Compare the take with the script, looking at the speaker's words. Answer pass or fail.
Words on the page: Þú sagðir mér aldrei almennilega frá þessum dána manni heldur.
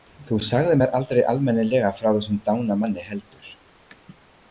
pass